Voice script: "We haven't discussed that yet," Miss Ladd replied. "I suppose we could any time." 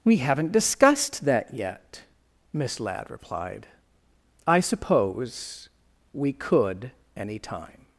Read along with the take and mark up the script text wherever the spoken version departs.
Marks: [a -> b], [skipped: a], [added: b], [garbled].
"We haven't discussed that yet," Miss Ladd replied. "I suppose we could any time."